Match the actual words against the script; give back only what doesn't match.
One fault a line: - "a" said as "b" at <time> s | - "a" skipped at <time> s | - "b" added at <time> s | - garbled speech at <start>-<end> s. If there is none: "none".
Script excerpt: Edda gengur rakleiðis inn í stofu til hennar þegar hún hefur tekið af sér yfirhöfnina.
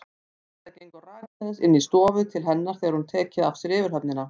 none